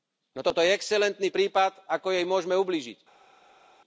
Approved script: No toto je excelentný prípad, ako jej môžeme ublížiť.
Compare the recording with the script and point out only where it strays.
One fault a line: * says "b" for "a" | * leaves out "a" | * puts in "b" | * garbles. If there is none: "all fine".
all fine